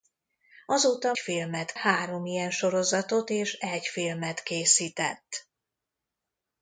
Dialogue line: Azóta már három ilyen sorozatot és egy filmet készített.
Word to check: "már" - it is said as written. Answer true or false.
false